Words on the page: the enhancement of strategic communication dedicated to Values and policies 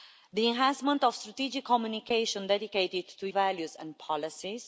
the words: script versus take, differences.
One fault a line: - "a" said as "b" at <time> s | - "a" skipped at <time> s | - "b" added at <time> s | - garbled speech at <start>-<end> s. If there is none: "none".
none